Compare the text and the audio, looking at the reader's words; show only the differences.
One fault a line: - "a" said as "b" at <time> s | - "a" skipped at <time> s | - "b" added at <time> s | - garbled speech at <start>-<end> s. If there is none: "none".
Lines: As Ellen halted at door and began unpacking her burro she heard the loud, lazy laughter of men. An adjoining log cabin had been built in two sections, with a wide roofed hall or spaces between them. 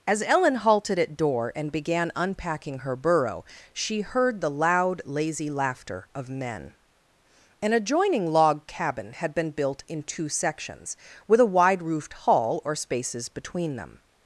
none